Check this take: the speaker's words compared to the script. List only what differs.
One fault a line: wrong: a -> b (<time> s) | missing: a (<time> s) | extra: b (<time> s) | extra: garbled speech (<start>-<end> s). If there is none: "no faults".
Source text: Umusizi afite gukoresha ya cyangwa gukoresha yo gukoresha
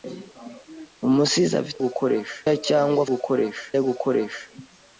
no faults